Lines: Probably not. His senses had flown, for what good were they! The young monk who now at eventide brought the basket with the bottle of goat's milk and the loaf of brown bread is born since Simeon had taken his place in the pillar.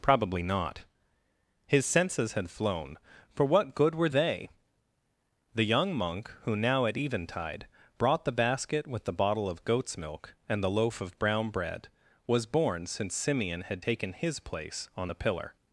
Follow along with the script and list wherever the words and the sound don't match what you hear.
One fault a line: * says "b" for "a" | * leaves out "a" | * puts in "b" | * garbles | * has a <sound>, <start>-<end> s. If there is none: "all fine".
* says "was" for "is"
* says "on" for "in"